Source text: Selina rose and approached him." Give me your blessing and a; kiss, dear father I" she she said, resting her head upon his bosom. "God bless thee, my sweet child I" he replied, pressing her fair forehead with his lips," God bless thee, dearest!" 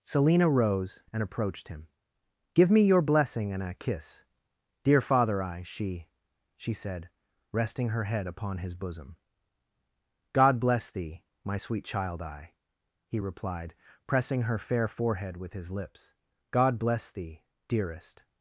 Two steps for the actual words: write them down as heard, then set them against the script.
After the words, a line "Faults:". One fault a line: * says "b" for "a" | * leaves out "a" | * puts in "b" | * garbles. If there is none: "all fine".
Selina rose and approached him." Give me your blessing and a; kiss, dear father I" she she said, resting her head upon his bosom. "God bless thee, my sweet child I" he replied, pressing her fair forehead with his lips," God bless thee, dearest!"
Faults:
all fine